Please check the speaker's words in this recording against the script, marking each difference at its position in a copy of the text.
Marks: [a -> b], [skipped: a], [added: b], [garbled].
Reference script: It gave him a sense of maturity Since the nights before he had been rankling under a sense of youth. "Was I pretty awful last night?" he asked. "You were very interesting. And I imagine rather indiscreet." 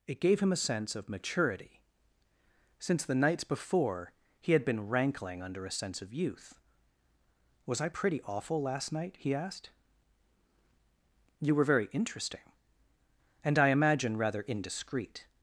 It gave him a sense of maturity Since the nights before he had been rankling under a sense of youth. "Was I pretty awful last night?" he asked. "You were very interesting. And I imagine rather indiscreet."